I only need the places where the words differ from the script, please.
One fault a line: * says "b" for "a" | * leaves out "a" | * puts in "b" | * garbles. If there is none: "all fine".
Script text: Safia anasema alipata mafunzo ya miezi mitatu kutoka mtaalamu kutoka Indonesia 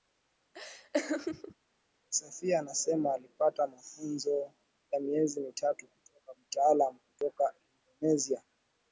all fine